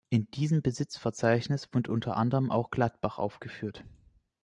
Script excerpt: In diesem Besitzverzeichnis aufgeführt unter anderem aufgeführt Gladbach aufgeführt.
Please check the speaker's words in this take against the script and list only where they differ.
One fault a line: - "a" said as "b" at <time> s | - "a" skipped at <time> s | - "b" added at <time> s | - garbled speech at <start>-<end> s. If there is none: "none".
- "aufgeführt" said as "wird" at 1.7 s
- "aufgeführt" said as "auch" at 2.5 s